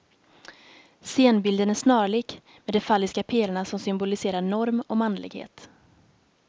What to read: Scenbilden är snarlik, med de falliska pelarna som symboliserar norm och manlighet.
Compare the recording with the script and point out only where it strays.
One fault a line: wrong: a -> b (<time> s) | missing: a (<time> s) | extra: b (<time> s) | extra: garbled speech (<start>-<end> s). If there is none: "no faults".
no faults